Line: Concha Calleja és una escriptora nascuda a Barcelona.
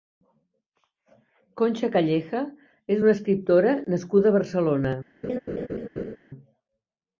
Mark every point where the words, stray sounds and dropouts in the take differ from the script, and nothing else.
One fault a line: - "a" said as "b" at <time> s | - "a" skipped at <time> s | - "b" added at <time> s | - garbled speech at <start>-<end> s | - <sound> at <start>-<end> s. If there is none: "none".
- laugh at 5.2-6.2 s